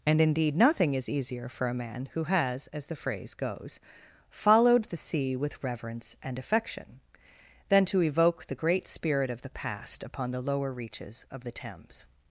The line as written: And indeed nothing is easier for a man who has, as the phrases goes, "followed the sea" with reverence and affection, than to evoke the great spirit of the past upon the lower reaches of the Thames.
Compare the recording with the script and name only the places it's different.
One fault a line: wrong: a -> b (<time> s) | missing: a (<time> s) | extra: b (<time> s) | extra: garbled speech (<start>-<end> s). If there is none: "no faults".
wrong: phrases -> phrase (3.0 s)